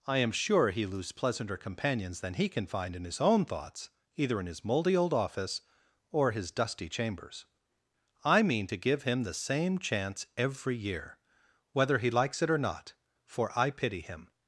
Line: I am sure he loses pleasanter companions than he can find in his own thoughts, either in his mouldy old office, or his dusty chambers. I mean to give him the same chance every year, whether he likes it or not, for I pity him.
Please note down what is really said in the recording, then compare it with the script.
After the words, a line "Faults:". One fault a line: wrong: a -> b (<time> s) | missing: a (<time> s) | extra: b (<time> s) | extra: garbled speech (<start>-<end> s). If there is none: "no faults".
I am sure he lose pleasanter companions than he can find in his own thoughts, either in his mouldy old office, or his dusty chambers. I mean to give him the same chance every year, whether he likes it or not, for I pity him.
Faults:
wrong: loses -> lose (0.8 s)